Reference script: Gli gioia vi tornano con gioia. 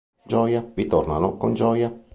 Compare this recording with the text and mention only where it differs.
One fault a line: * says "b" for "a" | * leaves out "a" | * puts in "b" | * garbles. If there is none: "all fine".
all fine